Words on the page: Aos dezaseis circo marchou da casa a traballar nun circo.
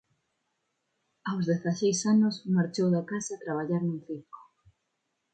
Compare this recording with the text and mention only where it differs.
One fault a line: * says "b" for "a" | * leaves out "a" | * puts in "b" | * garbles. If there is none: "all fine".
* says "anos" for "circo"